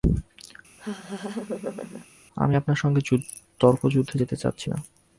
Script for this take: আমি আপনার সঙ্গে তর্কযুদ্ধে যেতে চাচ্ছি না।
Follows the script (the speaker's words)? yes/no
yes